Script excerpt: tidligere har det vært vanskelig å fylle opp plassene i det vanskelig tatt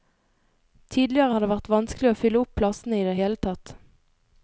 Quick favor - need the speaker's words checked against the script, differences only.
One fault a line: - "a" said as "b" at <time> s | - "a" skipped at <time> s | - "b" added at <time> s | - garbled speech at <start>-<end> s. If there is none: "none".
- "vanskelig" said as "hele" at 3.2 s